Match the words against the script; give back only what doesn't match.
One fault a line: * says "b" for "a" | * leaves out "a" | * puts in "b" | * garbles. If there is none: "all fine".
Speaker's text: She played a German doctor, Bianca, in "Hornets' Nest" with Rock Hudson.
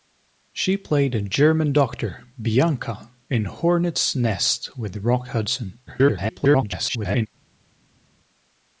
* garbles